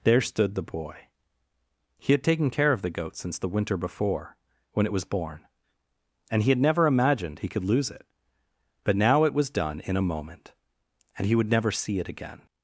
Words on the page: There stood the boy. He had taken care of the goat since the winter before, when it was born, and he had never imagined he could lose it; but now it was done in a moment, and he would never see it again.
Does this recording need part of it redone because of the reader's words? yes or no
no